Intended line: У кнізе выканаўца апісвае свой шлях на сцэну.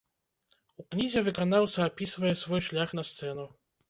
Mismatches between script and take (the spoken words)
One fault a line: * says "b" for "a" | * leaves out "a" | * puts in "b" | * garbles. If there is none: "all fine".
all fine